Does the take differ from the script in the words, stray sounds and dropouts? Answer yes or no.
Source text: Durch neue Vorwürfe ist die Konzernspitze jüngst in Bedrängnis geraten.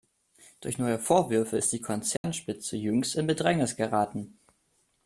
yes